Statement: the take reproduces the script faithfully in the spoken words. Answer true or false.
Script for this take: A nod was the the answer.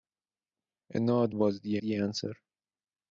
true